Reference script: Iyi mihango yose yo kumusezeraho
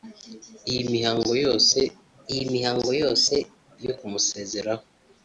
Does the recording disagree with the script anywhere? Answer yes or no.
yes